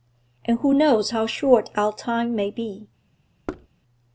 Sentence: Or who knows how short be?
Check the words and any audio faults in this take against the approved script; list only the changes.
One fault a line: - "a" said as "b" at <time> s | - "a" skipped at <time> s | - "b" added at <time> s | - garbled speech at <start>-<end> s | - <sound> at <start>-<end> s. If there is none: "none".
- "Or" said as "And" at 0.5 s
- "our time may" added at 1.8 s
- thud at 3.5-3.7 s